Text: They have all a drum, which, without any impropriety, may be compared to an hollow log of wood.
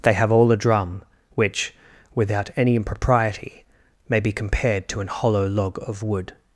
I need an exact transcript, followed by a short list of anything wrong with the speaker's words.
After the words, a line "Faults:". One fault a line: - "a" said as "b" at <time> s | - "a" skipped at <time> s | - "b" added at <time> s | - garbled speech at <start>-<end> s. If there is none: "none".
They have all a drum, which, without any impropriety, may be compared to an hollow log of wood.
Faults:
none